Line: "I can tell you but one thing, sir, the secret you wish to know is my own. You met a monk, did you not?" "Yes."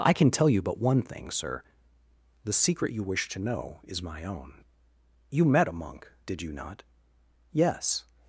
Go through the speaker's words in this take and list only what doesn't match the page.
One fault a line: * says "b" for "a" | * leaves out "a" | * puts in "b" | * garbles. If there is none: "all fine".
all fine